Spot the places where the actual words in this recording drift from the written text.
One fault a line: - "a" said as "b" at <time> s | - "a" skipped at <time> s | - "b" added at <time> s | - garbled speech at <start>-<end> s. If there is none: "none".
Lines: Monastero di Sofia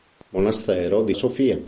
none